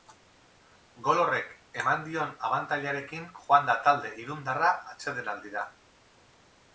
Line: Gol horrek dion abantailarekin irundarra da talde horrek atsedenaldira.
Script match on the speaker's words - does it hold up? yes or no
no